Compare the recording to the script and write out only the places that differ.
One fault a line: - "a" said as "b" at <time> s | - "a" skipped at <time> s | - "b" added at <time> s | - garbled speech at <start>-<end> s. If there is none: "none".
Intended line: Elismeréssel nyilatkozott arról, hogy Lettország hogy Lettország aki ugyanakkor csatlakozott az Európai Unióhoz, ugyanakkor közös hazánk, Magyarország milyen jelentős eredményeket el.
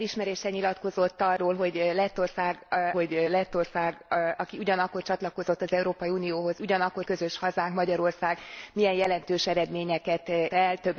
none